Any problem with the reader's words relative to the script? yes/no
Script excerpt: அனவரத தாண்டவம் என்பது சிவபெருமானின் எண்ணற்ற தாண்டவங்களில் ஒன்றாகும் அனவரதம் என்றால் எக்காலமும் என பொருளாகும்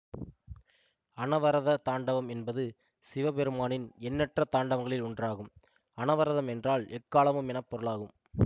no